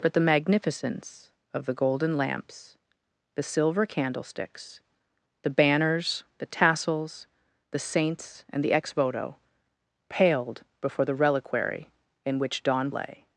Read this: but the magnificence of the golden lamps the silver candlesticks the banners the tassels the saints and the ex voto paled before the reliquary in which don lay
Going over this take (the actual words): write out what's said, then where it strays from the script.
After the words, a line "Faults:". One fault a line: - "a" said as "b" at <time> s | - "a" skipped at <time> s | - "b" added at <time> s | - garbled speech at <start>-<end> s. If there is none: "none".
but the magnificence of the golden lamps the silver candlesticks the banners the tassels the saints and the ex voto paled before the reliquary in which don lay
Faults:
none